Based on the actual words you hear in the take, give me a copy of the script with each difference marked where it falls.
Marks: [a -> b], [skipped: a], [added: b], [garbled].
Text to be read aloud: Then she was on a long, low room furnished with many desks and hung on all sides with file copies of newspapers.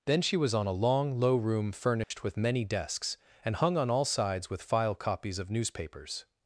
Then she was on a long, low room furnished with many desks and hung on all sides with file copies of newspapers.